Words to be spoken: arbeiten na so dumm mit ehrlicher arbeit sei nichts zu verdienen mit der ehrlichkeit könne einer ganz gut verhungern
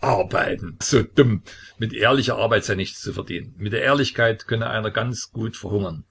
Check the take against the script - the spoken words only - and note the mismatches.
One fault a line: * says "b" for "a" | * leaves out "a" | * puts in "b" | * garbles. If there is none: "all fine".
* leaves out "na"